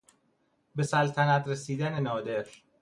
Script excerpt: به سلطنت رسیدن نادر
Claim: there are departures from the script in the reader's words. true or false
false